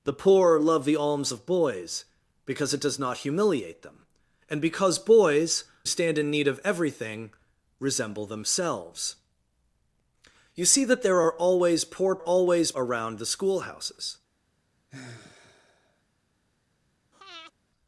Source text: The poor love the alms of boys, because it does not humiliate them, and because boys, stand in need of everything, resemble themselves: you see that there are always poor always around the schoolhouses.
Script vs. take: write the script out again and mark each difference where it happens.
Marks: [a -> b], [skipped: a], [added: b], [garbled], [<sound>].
The poor love the alms of boys, because it does not humiliate them, and because boys, stand in need of everything, resemble themselves: you see that there are always poor always around the schoolhouses. [sigh] [breath]